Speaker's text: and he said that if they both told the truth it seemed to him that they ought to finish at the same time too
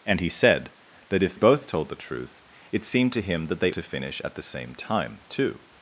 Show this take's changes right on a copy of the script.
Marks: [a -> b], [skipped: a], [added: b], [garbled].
and he said that if [skipped: they] both told the truth it seemed to him that they [skipped: ought] to finish at the same time too